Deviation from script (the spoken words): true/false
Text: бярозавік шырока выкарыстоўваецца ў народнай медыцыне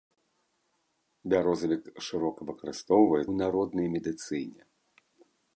false